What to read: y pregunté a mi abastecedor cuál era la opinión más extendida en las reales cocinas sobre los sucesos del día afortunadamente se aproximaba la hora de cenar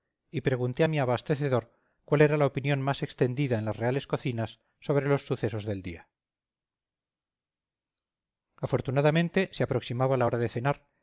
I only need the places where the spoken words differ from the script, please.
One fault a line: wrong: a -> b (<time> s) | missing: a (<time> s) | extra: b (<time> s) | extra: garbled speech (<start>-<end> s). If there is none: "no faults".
no faults